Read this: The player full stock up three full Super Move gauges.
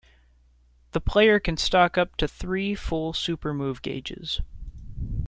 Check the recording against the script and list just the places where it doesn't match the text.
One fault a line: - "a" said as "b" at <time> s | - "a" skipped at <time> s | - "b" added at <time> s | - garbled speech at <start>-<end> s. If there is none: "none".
- "full" said as "can" at 1.4 s
- "to" added at 2.2 s